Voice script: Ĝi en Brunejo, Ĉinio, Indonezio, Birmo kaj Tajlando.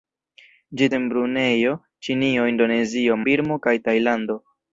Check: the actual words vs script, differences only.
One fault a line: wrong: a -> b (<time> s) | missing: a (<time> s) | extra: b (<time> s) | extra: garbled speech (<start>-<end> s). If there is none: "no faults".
no faults